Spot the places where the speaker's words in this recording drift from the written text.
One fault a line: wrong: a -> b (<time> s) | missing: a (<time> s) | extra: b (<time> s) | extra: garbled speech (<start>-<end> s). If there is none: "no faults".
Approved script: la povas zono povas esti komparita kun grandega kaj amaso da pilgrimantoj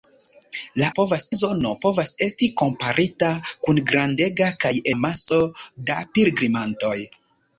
no faults